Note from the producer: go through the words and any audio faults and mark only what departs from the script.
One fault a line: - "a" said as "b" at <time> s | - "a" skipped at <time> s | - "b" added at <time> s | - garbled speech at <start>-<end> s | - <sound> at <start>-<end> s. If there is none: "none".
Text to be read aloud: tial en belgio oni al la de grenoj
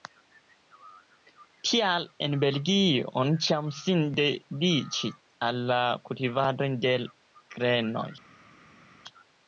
- "ĉiam sin dediĉis" added at 3.5 s
- "kultivado" added at 6.1 s